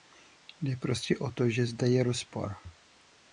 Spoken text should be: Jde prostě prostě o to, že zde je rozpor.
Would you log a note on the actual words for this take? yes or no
yes